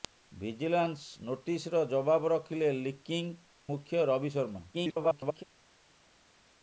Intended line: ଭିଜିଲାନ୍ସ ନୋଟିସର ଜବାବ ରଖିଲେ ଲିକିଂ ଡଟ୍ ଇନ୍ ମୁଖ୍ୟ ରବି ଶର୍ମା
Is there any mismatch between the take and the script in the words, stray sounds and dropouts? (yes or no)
yes